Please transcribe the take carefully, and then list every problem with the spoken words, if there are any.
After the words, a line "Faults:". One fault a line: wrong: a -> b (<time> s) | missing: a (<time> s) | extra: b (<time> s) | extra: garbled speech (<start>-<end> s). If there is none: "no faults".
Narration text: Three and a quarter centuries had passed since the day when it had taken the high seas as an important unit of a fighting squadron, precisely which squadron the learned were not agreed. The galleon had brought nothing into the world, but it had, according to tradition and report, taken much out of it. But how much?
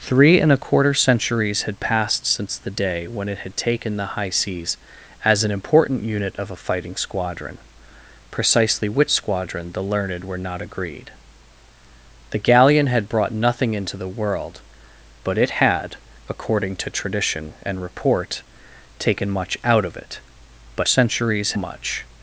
Three and a quarter centuries had passed since the day when it had taken the high seas as an important unit of a fighting squadron, precisely which squadron the learned were not agreed. The galleon had brought nothing into the world, but it had, according to tradition and report, taken much out of it. But centuries much?
Faults:
wrong: how -> centuries (20.8 s)